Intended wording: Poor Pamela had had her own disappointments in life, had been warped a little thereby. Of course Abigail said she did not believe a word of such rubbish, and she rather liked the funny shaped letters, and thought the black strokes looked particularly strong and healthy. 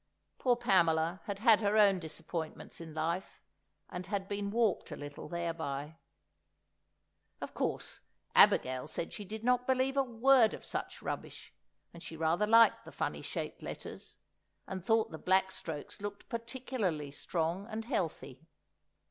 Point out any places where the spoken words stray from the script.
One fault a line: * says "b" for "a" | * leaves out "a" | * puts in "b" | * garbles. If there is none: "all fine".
* puts in "and"